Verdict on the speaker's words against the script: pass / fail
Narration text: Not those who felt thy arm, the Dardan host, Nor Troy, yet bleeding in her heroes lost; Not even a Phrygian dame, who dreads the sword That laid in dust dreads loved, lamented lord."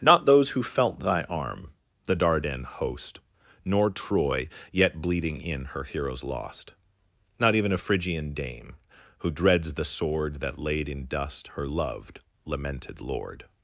fail